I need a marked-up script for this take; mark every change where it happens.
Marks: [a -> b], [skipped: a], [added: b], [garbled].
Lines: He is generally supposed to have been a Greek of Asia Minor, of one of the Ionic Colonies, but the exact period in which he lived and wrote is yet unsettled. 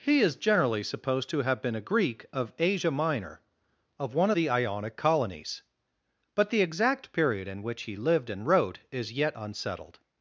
He is generally supposed to have been a Greek of Asia Minor, of one [skipped: of] the Ionic Colonies, but the exact period in which he lived and wrote is yet unsettled.